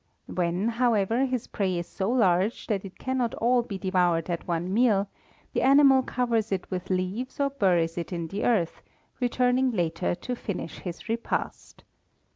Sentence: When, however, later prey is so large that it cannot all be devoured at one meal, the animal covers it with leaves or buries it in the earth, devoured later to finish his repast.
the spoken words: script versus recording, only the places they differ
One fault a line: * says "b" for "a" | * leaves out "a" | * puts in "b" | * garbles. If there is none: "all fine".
* says "his" for "later"
* says "returning" for "devoured"